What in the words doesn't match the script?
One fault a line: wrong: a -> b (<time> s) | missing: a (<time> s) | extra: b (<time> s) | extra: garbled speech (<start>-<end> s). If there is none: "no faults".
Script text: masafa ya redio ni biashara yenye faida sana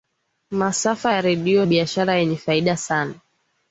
missing: ni (1.6 s)